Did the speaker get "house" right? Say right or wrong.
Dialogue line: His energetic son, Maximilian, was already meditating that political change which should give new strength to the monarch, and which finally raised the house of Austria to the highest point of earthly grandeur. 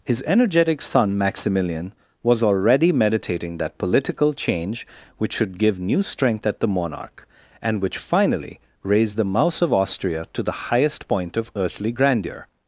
wrong